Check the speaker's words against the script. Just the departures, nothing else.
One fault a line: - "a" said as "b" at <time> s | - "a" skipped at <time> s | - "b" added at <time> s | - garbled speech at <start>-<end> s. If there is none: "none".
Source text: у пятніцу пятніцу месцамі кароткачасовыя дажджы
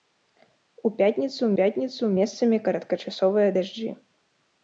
none